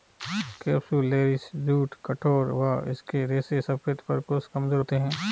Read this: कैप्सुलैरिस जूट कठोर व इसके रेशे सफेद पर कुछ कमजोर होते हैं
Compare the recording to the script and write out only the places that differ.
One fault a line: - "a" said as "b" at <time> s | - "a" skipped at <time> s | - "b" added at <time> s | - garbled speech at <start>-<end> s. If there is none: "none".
none